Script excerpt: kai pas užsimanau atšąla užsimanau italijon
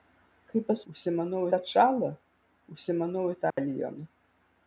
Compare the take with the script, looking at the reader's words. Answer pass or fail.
pass